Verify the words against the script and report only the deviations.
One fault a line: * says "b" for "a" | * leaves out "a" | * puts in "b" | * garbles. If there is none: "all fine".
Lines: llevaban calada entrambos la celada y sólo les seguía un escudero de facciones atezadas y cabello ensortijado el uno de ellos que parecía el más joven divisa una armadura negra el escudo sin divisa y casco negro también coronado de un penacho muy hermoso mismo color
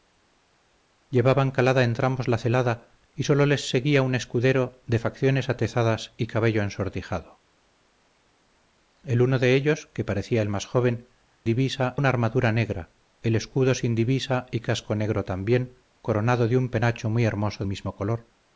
all fine